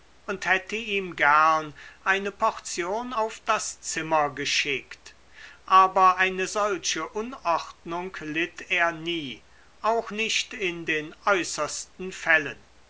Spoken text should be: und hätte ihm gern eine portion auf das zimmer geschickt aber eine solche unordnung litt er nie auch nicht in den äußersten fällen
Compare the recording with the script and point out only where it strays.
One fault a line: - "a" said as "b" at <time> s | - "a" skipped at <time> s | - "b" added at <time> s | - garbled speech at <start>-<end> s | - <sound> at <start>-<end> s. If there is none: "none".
none